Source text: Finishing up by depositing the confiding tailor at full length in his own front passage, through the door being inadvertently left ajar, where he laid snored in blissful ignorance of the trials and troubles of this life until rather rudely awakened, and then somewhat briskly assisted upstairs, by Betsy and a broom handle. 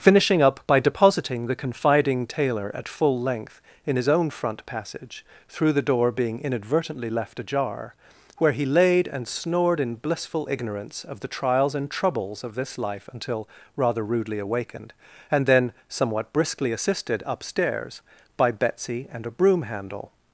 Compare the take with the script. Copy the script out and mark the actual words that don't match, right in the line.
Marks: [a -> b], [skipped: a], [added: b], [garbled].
Finishing up by depositing the confiding tailor at full length in his own front passage, through the door being inadvertently left ajar, where he laid [added: and] snored in blissful ignorance of the trials and troubles of this life until rather rudely awakened, and then somewhat briskly assisted upstairs, by Betsy and a broom handle.